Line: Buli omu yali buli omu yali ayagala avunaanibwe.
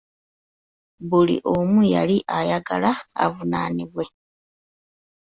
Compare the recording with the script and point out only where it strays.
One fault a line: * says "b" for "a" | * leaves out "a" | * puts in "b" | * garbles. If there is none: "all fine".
* leaves out "buli omu yali"